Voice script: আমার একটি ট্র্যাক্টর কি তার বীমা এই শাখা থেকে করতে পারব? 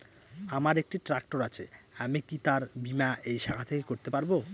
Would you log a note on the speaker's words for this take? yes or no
yes